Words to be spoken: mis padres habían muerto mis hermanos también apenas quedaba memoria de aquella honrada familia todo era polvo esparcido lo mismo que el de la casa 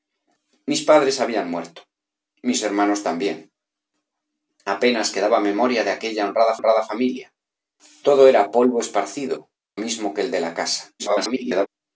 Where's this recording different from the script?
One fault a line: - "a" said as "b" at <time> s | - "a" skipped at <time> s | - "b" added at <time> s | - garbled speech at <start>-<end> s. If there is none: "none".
- "honrada" added at 6.5 s
- "lo" skipped at 9.5 s
- garbled speech at 11.0-11.7 s